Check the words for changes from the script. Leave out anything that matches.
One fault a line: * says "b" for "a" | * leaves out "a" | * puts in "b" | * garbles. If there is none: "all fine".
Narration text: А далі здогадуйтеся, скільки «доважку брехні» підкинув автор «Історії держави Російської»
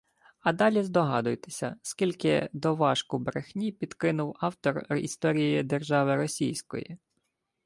all fine